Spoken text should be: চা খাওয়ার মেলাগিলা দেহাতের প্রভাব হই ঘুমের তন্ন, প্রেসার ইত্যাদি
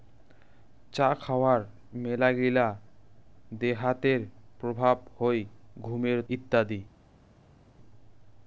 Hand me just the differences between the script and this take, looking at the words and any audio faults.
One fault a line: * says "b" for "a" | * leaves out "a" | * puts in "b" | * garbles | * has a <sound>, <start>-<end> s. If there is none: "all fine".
* leaves out "তন্ন প্রেসার"